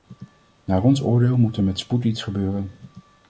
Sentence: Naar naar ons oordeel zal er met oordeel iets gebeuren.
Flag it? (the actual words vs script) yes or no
yes